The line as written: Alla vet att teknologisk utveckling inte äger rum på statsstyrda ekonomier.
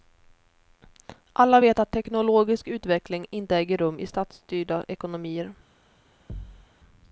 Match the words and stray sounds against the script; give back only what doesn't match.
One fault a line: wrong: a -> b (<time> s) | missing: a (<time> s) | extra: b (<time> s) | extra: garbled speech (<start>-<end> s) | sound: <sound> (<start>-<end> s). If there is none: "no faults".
wrong: på -> i (4.0 s)
sound: thud (6.3-6.7 s)